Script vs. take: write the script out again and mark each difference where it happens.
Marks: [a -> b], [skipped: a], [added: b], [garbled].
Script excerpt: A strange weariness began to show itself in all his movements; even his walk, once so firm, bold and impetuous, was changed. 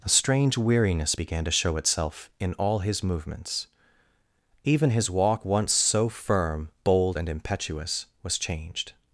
A strange weariness began to show itself in all his movements; even his walk, once so firm, bold and impetuous, was changed.